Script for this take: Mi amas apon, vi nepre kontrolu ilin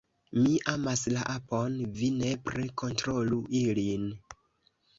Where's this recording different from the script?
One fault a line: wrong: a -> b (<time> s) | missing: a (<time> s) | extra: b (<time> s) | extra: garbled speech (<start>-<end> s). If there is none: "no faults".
extra: la (1.2 s)